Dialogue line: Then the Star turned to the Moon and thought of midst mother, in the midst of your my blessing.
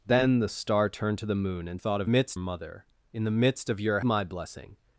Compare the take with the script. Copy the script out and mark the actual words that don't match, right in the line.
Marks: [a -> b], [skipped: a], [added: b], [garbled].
Then the Star turned to the Moon and thought of midst mother, in the midst of your my blessing.